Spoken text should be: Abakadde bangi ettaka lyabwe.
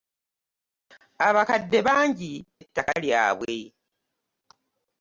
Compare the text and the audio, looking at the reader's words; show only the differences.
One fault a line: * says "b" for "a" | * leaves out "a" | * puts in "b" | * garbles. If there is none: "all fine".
all fine